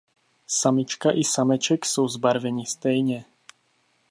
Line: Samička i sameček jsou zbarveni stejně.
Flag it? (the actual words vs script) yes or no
no